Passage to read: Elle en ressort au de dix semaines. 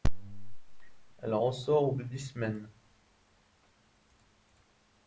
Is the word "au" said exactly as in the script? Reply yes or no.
yes